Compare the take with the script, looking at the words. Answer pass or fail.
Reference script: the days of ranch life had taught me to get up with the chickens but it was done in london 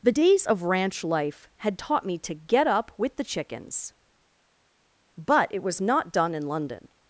fail